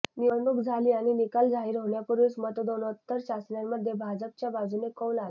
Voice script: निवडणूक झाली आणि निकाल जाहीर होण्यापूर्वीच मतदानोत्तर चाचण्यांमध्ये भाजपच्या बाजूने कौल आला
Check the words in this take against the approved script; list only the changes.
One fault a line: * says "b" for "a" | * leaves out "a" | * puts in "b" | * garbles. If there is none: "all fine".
all fine